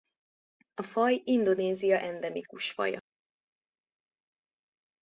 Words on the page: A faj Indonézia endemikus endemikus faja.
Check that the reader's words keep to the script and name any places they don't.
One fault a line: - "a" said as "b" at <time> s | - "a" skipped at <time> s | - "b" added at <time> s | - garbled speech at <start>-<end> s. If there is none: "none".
- "endemikus" skipped at 2.7 s